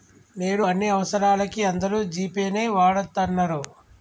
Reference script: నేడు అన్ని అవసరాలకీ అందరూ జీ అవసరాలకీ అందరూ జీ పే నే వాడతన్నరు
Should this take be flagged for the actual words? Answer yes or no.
yes